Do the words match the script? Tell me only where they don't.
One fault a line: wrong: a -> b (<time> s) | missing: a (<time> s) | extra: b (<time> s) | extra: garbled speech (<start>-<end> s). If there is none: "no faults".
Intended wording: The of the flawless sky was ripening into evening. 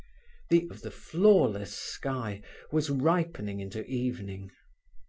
no faults